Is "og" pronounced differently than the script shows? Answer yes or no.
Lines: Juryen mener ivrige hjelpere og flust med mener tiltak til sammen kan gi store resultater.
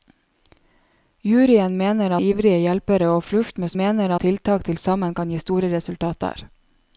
no